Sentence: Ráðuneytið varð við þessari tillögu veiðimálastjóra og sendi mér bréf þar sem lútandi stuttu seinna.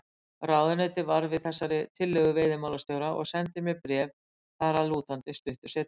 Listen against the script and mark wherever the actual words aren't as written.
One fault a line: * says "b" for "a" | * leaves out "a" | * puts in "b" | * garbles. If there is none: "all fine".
* says "að" for "sem"